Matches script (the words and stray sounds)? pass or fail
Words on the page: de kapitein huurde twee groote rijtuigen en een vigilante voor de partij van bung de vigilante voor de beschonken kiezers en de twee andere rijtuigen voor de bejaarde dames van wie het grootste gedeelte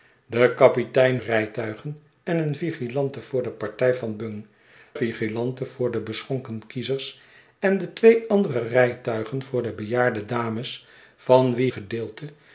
fail